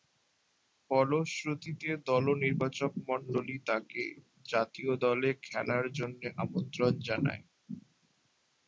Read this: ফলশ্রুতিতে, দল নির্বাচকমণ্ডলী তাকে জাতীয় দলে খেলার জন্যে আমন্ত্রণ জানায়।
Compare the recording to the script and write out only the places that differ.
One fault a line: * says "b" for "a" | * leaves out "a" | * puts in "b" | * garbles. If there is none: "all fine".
all fine